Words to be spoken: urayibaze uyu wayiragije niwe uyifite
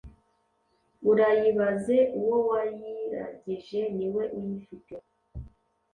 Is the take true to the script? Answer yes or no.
no